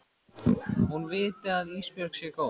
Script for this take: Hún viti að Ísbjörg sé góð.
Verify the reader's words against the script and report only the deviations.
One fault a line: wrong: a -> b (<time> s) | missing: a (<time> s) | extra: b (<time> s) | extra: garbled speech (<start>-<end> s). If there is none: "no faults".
no faults